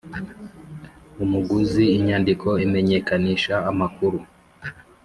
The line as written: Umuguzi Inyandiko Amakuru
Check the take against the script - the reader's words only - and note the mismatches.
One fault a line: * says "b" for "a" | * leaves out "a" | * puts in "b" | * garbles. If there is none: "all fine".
* puts in "Imenyekanisha"